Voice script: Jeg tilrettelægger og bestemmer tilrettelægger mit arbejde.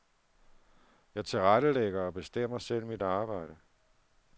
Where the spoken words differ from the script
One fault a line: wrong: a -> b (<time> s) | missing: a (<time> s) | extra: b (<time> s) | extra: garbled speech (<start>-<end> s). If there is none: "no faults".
wrong: tilrettelægger -> selv (2.6 s)